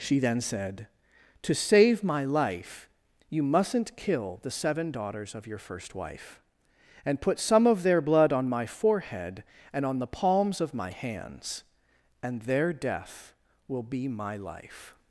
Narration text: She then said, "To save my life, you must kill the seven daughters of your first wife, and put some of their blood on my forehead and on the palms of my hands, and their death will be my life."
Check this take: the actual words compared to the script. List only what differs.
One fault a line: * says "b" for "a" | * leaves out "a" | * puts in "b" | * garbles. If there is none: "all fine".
* says "mustn't" for "must"